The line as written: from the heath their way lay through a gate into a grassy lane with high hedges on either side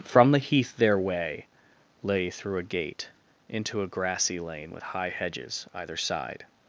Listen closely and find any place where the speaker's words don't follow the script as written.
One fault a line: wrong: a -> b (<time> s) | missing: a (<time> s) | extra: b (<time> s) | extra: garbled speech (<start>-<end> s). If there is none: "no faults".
missing: on (5.7 s)